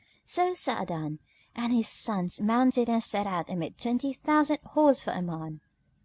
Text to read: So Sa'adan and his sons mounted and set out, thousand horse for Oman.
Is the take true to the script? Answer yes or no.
no